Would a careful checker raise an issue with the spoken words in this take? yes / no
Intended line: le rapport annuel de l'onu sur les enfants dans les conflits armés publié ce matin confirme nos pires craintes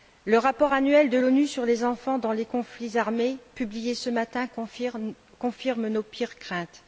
no